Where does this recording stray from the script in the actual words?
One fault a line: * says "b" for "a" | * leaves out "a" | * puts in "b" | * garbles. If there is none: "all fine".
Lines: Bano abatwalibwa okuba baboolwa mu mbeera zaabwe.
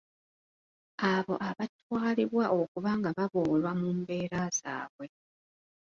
* says "Abo" for "Bano"
* puts in "nga"